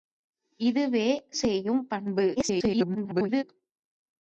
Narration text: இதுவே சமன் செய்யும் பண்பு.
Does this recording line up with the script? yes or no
no